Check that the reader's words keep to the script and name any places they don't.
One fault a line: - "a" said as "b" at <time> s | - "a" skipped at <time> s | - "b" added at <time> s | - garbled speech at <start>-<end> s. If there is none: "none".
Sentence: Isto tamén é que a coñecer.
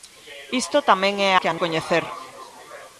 none